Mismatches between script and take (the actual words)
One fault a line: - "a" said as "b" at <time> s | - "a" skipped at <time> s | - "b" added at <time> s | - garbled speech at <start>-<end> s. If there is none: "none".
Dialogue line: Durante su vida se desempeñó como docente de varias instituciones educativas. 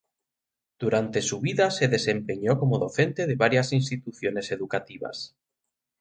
none